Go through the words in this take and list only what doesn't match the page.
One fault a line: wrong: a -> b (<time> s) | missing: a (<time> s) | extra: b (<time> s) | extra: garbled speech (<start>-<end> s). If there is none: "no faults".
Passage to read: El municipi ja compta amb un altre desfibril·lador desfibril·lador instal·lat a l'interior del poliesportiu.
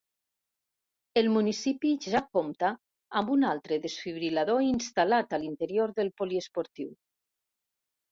missing: desfibril·lador (4.7 s)